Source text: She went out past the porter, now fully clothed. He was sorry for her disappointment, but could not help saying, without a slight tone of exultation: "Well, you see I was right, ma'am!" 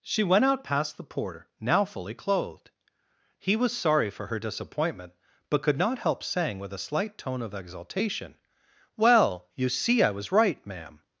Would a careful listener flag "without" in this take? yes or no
yes